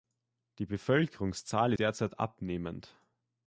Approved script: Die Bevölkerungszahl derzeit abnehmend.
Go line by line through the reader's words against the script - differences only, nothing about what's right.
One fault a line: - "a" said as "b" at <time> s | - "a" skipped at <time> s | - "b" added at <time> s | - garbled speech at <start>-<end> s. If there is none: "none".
none